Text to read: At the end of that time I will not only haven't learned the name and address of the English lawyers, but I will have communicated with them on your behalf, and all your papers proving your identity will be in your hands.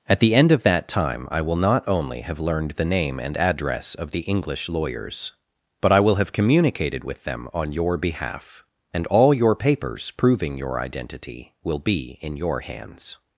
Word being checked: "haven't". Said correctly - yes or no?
no